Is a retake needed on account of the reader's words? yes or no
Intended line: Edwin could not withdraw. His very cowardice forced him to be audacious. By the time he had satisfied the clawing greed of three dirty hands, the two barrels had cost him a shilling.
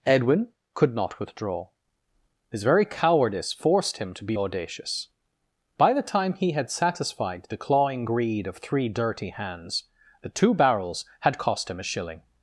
no